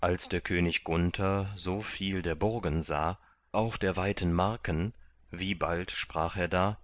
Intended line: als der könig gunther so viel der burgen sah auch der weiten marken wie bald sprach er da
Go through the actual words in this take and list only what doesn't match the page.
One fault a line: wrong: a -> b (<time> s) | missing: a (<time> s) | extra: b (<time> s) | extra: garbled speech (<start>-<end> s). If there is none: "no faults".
no faults